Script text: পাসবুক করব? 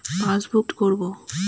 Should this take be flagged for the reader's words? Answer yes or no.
no